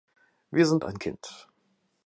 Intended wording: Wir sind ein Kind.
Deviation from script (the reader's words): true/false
false